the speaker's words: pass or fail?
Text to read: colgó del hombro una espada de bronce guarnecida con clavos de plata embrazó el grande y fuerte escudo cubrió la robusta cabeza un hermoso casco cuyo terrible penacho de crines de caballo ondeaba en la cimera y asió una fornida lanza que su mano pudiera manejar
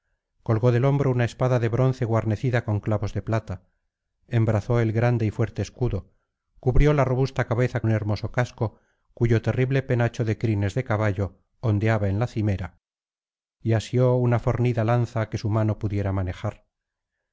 pass